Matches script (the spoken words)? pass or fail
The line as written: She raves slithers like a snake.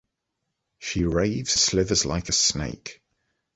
pass